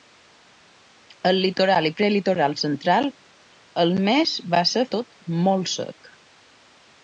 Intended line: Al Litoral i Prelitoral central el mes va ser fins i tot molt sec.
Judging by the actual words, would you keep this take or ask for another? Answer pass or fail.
fail